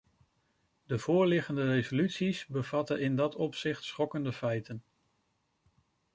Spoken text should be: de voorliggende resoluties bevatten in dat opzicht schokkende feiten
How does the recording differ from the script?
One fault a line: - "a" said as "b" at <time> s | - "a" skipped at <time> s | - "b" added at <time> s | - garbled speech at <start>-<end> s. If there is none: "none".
none